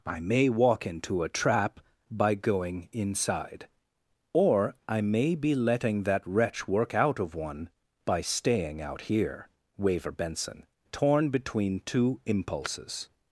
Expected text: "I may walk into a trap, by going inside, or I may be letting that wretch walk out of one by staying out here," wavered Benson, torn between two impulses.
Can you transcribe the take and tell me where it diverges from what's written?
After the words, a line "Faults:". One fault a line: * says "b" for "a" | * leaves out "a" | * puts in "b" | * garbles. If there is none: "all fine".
"I may walk into a trap, by going inside, or I may be letting that wretch work out of one by staying out here," waver Benson, torn between two impulses.
Faults:
* says "work" for "walk"
* says "waver" for "wavered"